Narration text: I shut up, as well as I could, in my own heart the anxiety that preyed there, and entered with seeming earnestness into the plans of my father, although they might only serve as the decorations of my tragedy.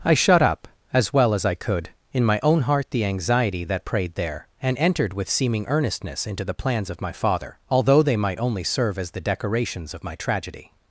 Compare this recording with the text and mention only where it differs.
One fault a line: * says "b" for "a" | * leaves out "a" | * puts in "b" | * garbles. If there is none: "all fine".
all fine